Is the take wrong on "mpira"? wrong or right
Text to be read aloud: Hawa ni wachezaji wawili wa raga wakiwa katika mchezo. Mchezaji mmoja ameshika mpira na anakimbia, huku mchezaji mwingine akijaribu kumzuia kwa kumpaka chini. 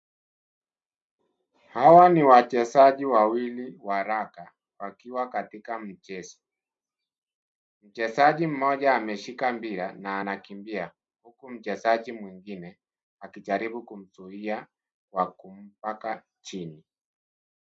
right